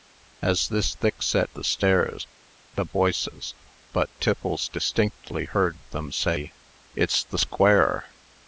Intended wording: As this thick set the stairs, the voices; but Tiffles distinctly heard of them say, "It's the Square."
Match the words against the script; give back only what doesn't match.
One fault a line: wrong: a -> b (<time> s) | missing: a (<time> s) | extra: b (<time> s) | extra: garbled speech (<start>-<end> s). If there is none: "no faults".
no faults